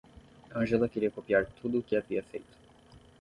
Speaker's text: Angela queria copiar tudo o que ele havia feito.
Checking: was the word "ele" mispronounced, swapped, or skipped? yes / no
yes